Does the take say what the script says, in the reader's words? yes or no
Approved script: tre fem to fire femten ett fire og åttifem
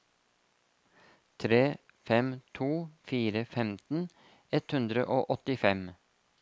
no